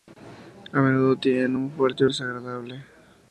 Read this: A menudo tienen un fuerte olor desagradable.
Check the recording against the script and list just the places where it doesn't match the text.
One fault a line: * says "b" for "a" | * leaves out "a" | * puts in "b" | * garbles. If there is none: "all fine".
* leaves out "olor"